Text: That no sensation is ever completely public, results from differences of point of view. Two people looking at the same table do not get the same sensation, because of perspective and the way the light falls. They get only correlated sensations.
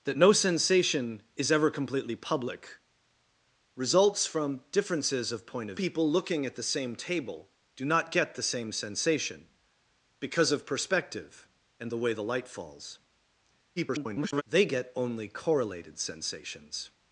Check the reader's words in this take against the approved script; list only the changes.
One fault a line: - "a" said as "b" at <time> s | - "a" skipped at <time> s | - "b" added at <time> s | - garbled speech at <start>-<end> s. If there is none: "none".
- "view Two" skipped at 5.8 s
- garbled speech at 13.8-14.4 s